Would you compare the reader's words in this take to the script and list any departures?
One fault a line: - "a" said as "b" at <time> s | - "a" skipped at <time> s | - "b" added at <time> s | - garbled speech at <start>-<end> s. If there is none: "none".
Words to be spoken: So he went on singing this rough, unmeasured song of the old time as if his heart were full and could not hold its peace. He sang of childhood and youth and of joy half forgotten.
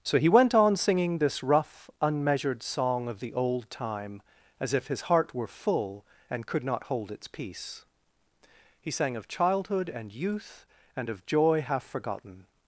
none